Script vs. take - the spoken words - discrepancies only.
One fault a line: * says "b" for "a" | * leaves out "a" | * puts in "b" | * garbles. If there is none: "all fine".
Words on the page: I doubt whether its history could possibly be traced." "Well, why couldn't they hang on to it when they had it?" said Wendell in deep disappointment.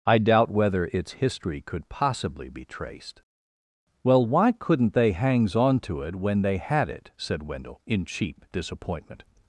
* says "hangs" for "hang"
* says "cheap" for "deep"